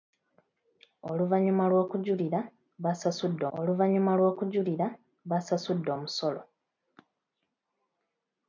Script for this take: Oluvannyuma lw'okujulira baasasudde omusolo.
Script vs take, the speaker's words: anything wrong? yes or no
yes